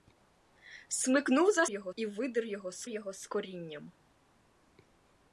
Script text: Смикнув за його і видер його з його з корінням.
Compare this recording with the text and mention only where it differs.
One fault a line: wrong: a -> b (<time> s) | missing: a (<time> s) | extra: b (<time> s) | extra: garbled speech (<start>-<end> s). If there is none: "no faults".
no faults